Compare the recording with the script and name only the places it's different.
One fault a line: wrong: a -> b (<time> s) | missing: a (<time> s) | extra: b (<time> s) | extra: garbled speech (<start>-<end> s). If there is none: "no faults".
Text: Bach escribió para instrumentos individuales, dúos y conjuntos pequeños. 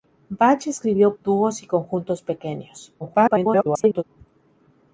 missing: para instrumentos individuales (1.1 s)
extra: garbled speech (3.0-4.0 s)